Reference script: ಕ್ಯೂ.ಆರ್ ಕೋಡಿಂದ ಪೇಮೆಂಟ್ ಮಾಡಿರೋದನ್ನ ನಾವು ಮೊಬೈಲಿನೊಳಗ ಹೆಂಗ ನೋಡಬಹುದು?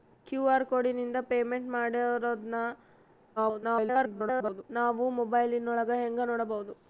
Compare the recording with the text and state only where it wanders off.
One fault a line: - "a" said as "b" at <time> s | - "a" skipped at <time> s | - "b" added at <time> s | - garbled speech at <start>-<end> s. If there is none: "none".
- garbled speech at 3.4-4.6 s